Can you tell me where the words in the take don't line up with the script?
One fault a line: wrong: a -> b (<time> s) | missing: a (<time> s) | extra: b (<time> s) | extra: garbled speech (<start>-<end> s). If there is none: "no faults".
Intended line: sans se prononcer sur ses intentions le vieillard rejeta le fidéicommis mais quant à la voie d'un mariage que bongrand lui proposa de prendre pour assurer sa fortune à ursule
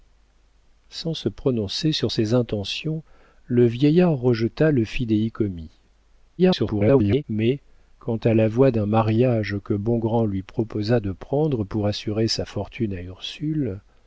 extra: garbled speech (6.4-7.2 s)